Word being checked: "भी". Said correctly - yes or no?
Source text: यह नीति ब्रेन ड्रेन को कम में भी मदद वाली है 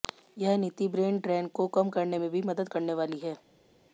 yes